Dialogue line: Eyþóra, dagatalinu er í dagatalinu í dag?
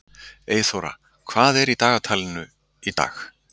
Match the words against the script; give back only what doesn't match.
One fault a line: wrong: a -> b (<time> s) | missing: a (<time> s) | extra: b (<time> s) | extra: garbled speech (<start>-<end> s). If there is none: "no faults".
wrong: dagatalinu -> hvað (1.3 s)